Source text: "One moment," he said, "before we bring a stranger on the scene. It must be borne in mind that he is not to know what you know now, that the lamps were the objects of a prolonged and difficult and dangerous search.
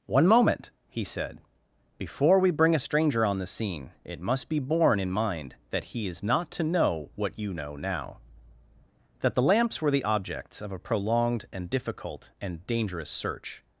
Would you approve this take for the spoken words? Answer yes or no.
yes